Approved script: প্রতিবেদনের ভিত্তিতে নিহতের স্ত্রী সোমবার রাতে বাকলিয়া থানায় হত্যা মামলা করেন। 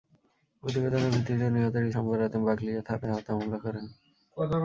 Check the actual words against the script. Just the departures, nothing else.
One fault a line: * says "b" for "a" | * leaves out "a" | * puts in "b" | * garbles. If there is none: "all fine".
* leaves out "স্ত্রী"